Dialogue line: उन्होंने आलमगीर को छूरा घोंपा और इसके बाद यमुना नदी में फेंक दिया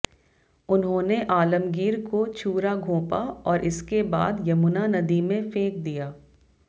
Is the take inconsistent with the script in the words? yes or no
no